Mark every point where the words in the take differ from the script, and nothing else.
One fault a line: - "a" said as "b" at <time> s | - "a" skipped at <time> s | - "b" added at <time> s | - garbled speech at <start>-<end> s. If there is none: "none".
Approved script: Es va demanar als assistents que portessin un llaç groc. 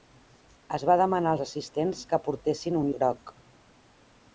- "llaç" skipped at 2.9 s